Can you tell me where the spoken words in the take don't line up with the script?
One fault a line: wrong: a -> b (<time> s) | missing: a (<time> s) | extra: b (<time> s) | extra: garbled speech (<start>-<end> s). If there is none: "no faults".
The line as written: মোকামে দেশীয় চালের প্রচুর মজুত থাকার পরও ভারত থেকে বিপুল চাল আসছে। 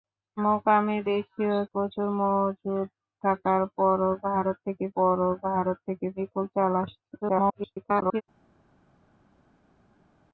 missing: চালের (1.6 s)
extra: পরও ভারত থেকে (4.9 s)
extra: garbled speech (7.2-8.2 s)